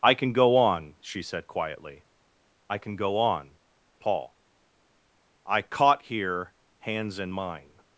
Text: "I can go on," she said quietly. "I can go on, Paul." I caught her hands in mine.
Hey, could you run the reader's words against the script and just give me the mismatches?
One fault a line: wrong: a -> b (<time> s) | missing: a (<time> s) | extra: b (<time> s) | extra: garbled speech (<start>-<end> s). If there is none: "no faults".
wrong: her -> here (6.0 s)